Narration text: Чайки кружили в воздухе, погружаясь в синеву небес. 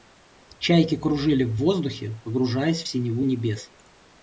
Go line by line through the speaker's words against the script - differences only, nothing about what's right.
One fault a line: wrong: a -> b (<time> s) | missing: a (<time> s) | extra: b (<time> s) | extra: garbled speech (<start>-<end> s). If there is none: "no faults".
no faults